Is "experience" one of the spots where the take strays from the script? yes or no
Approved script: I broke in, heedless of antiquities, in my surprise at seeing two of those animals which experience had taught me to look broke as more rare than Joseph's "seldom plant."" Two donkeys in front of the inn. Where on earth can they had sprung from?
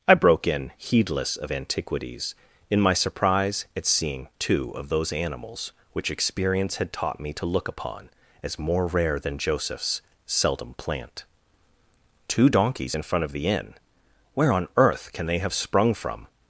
no